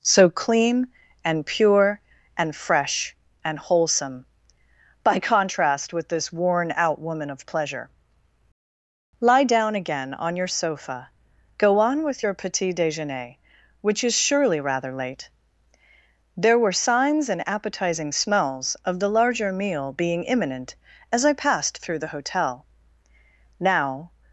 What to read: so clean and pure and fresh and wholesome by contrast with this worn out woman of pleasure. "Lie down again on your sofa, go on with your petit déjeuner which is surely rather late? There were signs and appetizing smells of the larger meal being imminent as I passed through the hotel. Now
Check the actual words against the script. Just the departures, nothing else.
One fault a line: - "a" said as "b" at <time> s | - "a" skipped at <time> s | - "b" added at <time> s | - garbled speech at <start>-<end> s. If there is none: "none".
none